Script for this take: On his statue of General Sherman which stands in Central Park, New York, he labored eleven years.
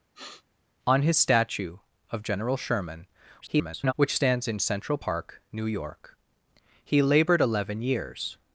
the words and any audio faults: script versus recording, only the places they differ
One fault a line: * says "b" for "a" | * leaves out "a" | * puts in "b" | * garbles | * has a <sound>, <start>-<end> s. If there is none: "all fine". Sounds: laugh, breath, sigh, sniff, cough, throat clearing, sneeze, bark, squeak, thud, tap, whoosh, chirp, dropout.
* has a sniff, 0.1-0.4 s
* garbles